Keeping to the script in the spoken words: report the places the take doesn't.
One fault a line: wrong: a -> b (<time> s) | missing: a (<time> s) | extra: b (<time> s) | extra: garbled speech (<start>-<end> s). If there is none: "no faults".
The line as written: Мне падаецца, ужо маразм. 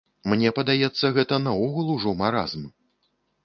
extra: гэта наогул (1.2 s)